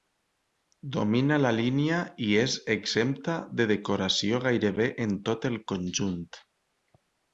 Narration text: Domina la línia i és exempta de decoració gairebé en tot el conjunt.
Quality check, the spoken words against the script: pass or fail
pass